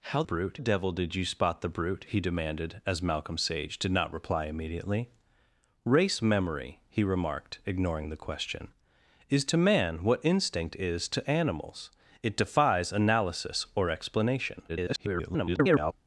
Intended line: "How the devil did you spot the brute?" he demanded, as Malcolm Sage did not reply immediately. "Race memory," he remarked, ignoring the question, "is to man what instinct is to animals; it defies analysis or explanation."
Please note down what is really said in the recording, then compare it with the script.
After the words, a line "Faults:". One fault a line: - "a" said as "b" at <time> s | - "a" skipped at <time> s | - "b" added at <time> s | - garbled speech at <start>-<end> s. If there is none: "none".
"How brute devil did you spot the brute?" he demanded, as Malcolm Sage did not reply immediately. "Race memory," he remarked, ignoring the question, "is to man what instinct is to animals; it defies analysis or explanation." [garbled]
Faults:
- "the" said as "brute" at 0.2 s
- garbled speech at 14.7-15.9 s